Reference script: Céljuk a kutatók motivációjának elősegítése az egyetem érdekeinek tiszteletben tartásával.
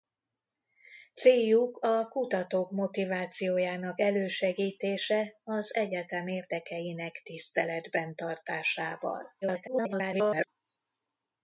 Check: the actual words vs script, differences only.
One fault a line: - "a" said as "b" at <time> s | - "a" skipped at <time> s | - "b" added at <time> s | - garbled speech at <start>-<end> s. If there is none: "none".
- garbled speech at 9.4-10.5 s